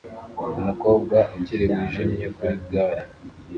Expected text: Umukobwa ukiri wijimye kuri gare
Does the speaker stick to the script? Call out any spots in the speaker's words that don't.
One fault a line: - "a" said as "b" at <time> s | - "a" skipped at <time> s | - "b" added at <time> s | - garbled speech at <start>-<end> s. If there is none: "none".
none